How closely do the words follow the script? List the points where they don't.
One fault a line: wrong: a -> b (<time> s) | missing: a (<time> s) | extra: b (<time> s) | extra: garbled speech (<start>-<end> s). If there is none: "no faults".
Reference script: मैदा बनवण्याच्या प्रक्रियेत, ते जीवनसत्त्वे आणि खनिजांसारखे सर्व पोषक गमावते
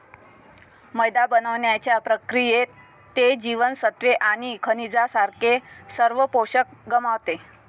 no faults